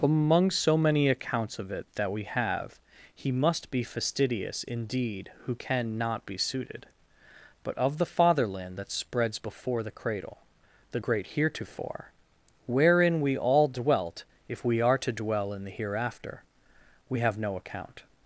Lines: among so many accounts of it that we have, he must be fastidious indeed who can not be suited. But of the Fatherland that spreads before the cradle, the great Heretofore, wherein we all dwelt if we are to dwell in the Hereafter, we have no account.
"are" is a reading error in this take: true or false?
false